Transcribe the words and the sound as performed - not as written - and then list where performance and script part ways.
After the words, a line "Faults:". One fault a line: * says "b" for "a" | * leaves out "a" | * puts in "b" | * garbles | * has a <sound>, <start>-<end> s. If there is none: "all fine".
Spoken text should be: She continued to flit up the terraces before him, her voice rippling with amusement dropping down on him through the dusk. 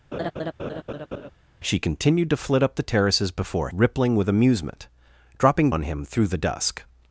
She continued to flit up the terraces before rippling with amusement dropping on him through the dusk.
Faults:
* has a laugh, 0.1-1.3 s
* leaves out "him her voice"
* leaves out "down"